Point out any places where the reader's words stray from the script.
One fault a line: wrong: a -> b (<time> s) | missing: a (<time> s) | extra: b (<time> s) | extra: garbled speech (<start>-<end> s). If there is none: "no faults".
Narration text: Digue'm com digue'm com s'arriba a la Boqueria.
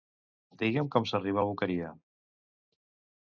missing: digue'm com (1.1 s)